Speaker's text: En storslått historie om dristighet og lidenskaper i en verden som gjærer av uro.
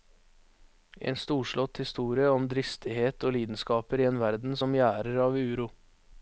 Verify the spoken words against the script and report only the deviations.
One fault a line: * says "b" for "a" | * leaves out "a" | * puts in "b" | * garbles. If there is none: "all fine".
all fine